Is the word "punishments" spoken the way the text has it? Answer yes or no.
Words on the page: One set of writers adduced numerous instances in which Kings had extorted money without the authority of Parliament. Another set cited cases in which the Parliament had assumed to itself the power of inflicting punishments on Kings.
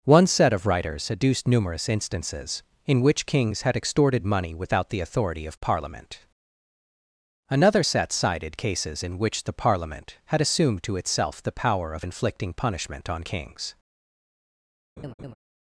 no